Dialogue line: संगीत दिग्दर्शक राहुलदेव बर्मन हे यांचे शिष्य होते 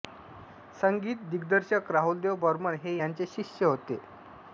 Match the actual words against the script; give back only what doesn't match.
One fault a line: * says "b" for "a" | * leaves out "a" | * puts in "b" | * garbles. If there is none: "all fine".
all fine